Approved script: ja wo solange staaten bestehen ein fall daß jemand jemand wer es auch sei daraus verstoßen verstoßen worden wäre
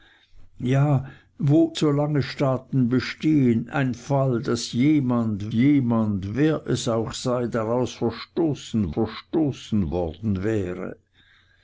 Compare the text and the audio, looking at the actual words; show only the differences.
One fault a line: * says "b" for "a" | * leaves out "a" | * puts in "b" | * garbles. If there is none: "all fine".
all fine